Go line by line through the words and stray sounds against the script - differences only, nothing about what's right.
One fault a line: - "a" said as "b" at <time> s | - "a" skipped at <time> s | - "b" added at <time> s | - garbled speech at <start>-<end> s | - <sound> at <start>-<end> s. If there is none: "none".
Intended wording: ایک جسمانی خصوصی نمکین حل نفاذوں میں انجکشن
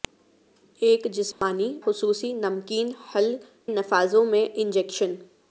- dropout at 1.3-1.4 s